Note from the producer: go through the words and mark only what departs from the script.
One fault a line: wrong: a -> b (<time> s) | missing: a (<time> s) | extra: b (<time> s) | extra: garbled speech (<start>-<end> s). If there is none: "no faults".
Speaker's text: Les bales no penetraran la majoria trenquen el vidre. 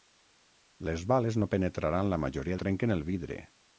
no faults